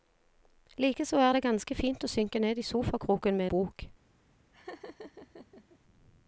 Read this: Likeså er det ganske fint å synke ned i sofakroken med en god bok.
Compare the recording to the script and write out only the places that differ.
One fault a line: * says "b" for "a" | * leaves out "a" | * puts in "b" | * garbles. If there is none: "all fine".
* leaves out "en god"